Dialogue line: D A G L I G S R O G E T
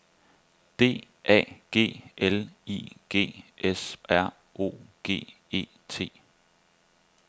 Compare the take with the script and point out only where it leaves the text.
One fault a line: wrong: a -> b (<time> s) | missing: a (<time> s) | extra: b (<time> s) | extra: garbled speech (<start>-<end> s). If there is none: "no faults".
no faults